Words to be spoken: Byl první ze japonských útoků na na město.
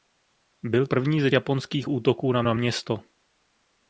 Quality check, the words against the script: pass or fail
pass